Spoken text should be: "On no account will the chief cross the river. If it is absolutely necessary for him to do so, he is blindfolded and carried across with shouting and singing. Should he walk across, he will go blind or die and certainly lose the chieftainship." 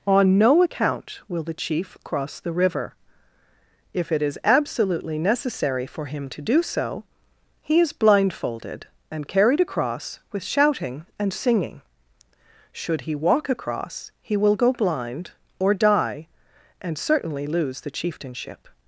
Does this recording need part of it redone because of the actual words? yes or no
no